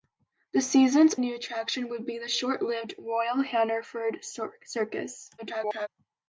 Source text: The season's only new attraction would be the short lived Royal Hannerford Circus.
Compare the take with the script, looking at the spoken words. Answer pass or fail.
fail